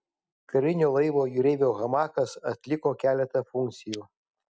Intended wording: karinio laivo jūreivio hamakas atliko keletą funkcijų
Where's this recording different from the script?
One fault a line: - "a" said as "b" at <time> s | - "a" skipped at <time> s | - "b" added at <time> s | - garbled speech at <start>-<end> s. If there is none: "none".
none